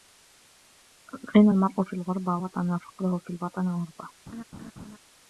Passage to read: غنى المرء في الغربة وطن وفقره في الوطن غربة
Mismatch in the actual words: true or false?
false